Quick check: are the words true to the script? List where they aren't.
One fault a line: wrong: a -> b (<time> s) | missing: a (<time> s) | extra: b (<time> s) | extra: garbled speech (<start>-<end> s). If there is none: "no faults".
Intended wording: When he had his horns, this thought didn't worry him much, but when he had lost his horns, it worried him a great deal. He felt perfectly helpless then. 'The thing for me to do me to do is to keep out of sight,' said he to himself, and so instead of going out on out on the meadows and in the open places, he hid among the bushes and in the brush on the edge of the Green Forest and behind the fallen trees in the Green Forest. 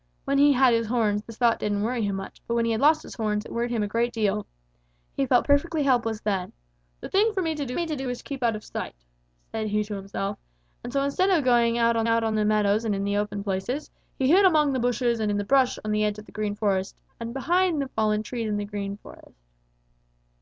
no faults